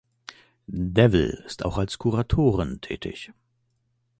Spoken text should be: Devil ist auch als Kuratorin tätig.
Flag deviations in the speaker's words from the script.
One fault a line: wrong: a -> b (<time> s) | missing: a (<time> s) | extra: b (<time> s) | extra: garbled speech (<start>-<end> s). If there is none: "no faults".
no faults